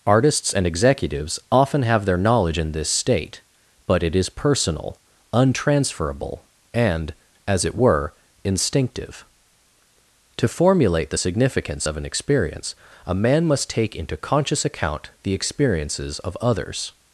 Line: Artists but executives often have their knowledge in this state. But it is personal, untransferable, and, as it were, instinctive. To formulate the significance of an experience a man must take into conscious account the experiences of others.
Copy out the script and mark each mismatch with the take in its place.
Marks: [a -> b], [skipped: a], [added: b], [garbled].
Artists [but -> and] executives often have their knowledge in this state. But it is personal, untransferable, and, as it were, instinctive. To formulate the significance of an experience a man must take into conscious account the experiences of others.